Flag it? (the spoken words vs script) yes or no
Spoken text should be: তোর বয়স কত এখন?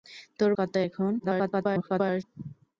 yes